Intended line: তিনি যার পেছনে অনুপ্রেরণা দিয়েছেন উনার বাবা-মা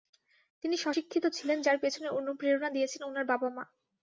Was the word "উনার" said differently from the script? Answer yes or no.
no